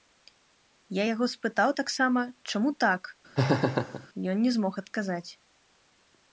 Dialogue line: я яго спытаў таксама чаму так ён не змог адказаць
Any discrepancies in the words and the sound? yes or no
yes